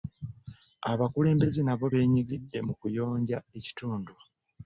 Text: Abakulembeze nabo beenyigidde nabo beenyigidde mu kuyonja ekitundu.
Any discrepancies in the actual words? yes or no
yes